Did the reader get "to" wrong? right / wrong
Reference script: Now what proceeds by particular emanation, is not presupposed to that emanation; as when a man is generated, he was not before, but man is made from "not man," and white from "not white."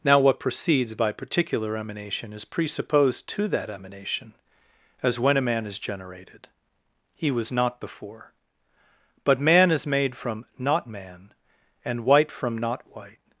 right